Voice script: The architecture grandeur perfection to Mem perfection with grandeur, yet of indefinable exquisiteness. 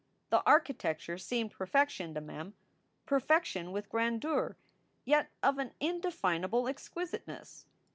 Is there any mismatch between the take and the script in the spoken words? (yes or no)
yes